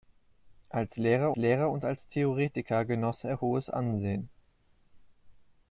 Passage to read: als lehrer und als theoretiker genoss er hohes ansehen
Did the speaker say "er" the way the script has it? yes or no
yes